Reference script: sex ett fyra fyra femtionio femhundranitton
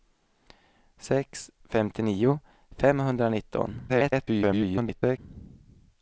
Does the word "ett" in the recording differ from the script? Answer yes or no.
yes